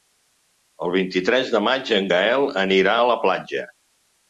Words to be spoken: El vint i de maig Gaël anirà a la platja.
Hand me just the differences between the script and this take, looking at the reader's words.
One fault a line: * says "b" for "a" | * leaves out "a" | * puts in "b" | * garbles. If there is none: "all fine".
* puts in "tres"
* puts in "en"